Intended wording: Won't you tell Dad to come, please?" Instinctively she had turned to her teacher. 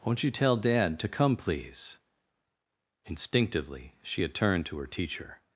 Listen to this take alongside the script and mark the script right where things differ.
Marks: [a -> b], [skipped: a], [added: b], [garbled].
Won't you tell Dad to come, please?" Instinctively she had turned to her teacher.